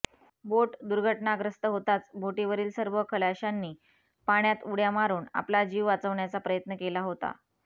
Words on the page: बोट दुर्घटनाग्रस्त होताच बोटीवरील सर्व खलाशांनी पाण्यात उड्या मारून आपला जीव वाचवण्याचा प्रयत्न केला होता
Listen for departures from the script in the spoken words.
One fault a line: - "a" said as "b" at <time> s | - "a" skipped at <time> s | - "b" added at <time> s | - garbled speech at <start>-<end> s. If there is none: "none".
none